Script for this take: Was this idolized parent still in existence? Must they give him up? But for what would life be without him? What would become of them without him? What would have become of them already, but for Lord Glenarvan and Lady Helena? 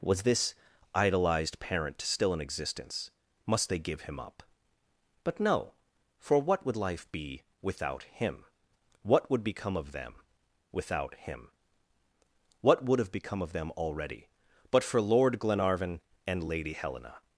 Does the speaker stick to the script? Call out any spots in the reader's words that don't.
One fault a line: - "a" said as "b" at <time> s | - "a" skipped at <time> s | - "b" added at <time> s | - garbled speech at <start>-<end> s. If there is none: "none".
- "no" added at 5.4 s